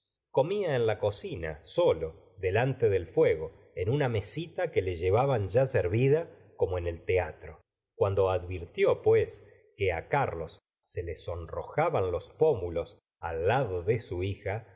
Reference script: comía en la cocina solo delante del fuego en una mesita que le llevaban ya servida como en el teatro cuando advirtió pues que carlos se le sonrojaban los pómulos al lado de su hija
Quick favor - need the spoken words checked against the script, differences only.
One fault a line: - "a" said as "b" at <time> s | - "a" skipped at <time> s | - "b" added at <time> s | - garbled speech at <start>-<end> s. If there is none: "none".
none